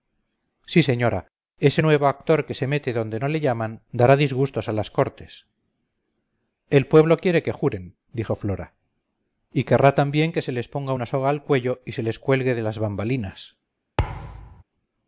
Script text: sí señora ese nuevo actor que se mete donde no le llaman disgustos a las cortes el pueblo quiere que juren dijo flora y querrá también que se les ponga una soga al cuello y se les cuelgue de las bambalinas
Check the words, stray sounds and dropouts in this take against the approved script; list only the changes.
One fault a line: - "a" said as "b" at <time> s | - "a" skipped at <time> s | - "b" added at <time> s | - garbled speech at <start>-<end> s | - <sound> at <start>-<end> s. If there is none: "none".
- "dará" added at 3.9 s
- thud at 14.0-14.6 s